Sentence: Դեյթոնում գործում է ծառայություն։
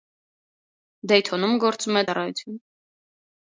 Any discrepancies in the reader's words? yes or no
no